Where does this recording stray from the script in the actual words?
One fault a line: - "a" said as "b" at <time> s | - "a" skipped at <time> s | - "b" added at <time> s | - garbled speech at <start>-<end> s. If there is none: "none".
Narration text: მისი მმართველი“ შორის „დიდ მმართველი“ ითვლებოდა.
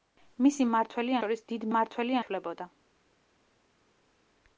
none